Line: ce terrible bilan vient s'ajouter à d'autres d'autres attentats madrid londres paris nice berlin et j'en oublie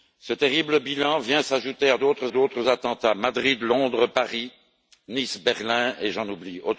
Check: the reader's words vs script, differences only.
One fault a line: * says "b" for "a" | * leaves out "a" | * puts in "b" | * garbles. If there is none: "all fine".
all fine